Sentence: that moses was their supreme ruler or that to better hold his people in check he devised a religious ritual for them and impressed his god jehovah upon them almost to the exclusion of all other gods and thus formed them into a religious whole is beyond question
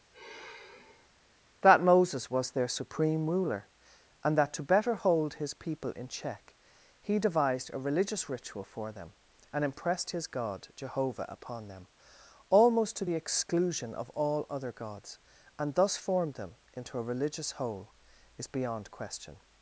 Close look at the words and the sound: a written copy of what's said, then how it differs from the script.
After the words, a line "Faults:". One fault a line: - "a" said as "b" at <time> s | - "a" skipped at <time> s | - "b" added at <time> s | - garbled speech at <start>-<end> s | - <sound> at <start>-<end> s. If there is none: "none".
that moses was their supreme ruler and that to better hold his people in check he devised a religious ritual for them and impressed his god jehovah upon them almost to the exclusion of all other gods and thus formed them into a religious whole is beyond question
Faults:
- sigh at 0.1-1.1 s
- "or" said as "and" at 4.2 s